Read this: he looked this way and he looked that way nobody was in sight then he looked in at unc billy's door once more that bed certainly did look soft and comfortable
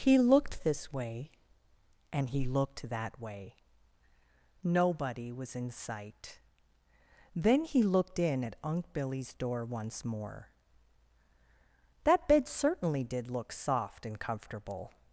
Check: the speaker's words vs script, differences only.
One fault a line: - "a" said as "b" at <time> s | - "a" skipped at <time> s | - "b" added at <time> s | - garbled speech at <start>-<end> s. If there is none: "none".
none